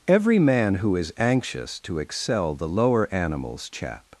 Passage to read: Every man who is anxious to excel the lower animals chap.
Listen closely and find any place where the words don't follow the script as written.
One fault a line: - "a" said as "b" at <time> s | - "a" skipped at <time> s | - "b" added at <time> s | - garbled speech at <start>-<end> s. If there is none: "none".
none